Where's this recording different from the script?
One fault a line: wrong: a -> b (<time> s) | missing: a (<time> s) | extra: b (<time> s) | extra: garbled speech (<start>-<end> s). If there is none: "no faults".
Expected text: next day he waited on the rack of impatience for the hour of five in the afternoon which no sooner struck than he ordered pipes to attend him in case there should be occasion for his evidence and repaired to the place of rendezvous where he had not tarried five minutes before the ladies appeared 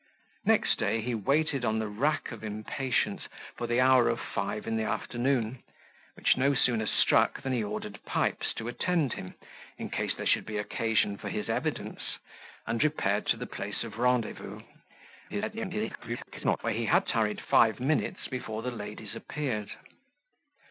extra: garbled speech (15.3-16.6 s)
missing: not (17.1 s)